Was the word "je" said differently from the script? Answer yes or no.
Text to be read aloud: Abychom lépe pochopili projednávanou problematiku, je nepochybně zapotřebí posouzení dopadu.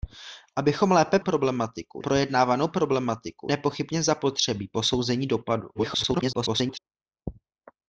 yes